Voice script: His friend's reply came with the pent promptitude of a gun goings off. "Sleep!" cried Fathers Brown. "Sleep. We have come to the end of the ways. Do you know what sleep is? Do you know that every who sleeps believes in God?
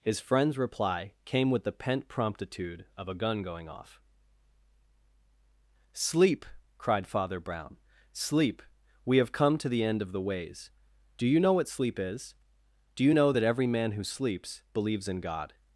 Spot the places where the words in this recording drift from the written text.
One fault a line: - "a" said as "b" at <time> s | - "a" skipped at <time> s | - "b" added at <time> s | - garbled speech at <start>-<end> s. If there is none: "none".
- "goings" said as "going" at 3.4 s
- "Fathers" said as "Father" at 7.0 s
- "man" added at 13.7 s